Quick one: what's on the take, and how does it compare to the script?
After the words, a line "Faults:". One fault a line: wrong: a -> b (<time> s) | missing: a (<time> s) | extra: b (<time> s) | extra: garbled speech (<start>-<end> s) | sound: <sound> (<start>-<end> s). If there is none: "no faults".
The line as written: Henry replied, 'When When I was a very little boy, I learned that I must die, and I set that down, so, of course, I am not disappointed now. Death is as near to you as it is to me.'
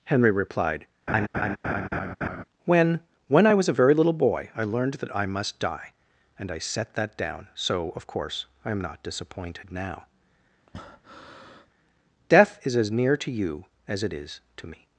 Henry replied, 'When When I was a very little boy, I learned that I must die, and I set that down, so, of course, I am not disappointed now. Death is as near to you as it is to me.'
Faults:
sound: laugh (1.1-2.4 s)
sound: breath (10.7-11.7 s)